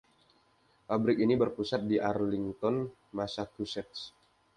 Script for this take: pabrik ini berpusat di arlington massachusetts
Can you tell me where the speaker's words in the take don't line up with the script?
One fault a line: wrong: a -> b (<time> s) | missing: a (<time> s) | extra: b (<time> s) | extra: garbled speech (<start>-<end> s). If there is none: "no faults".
no faults